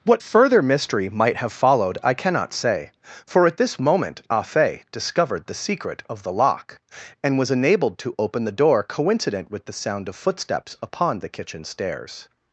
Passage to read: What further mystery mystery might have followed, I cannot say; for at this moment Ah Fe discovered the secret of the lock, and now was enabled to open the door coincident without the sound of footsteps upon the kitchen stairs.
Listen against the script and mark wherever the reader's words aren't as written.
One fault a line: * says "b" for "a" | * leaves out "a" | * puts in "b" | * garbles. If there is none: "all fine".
* leaves out "mystery"
* leaves out "now"
* says "with" for "without"